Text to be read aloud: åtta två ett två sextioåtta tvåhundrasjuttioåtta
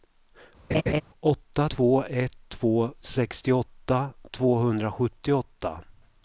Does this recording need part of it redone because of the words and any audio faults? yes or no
yes